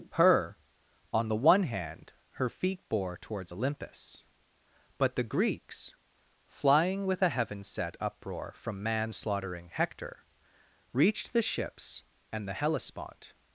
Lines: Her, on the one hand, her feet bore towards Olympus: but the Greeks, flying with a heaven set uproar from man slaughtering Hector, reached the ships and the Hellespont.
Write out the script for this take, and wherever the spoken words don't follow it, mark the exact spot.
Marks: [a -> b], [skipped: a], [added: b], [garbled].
Her, on the one hand, her feet bore towards Olympus: but the Greeks, flying with a heaven set uproar from man slaughtering Hector, reached the ships and the Hellespont.